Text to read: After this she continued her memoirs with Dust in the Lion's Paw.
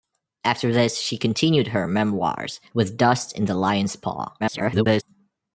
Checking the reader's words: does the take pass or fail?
fail